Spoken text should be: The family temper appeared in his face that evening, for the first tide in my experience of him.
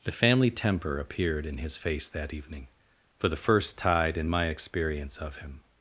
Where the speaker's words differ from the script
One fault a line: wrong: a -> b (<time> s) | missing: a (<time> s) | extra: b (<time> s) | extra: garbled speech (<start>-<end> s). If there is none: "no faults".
no faults